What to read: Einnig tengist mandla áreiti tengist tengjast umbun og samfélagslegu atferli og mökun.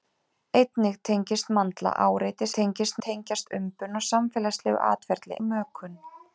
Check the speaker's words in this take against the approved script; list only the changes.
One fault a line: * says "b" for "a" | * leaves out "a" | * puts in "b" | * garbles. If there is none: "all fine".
all fine